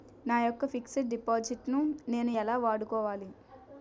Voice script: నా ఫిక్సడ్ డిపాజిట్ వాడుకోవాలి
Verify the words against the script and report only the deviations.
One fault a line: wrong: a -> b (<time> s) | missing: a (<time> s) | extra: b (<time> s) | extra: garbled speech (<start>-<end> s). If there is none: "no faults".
extra: యెక్క (0.4 s)
extra: ను నేను ఎలా (1.7 s)